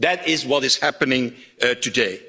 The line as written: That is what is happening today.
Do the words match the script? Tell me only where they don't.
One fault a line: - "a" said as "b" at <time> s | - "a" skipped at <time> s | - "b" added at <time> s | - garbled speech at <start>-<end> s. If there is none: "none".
none